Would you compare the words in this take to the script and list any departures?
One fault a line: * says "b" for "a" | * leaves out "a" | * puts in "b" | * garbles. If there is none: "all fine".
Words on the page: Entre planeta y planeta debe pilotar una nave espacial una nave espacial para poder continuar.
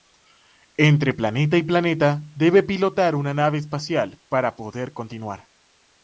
* leaves out "una nave espacial"